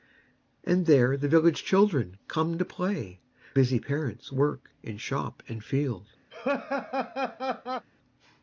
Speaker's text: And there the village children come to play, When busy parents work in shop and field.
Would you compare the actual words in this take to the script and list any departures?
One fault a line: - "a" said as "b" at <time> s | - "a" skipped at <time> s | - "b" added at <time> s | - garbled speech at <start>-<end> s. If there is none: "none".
- "When" skipped at 3.2 s